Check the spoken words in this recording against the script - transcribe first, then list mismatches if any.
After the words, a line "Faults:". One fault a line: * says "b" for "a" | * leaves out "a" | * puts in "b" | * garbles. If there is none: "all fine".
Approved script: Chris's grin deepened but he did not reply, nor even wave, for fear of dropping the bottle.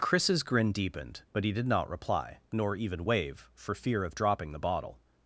Chris's grin deepened but he did not reply, nor even wave, for fear of dropping the bottle.
Faults:
all fine